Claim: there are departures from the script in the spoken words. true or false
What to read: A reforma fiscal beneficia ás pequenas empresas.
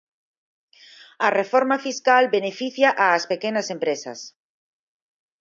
false